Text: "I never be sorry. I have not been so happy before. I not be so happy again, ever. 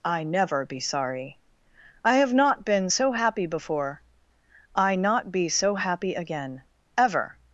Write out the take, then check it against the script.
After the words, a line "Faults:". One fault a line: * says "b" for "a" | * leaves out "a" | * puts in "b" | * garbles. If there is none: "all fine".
"I never be sorry. I have not been so happy before. I not be so happy again, ever.
Faults:
all fine